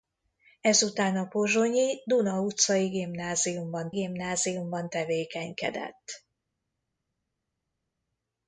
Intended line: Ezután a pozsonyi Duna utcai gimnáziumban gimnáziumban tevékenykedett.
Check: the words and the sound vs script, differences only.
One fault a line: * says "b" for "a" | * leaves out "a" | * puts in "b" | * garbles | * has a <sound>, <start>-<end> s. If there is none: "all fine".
all fine